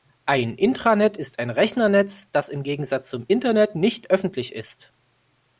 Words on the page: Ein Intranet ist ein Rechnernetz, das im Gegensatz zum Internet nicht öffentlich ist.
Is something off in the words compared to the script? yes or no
no